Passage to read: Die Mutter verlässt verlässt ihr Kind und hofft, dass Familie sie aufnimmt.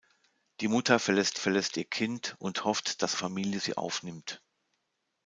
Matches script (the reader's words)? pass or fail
pass